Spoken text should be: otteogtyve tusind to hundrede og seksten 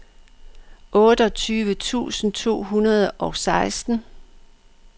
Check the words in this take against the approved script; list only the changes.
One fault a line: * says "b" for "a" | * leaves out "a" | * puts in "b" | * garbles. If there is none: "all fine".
all fine